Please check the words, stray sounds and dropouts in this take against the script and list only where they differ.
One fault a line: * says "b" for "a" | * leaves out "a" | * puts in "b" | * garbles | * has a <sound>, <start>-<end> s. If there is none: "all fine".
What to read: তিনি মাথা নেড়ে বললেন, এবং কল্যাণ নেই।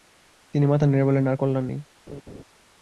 * says "আর" for "এবং"
* has a laugh, 2.1-2.4 s